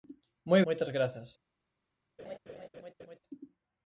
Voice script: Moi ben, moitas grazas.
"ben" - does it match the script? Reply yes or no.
no